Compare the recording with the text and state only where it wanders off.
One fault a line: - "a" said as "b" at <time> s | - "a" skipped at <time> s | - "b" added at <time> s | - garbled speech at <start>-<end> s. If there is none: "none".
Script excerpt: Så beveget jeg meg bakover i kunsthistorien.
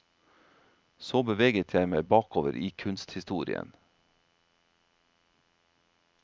none